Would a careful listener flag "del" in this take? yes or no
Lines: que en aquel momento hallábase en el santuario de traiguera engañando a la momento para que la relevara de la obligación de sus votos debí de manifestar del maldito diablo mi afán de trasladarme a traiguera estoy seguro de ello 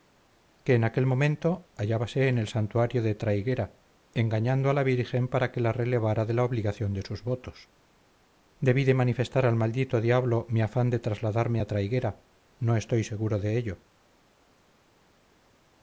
yes